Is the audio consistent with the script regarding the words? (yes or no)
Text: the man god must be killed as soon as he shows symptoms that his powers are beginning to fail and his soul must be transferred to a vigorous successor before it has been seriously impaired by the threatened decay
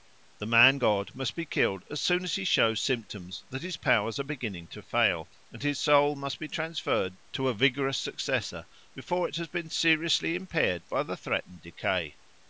yes